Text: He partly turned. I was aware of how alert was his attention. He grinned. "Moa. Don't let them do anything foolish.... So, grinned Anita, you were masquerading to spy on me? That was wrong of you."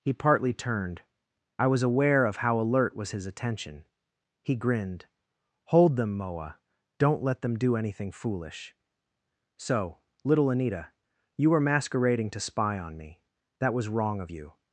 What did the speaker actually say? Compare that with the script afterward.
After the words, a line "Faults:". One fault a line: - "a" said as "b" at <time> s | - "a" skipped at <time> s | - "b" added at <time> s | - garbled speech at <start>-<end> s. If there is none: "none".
He partly turned. I was aware of how alert was his attention. He grinned. "Hold them, Moa. Don't let them do anything foolish.... So, little Anita, you were masquerading to spy on me? That was wrong of you."
Faults:
- "Hold them" added at 5.7 s
- "grinned" said as "little" at 10.2 s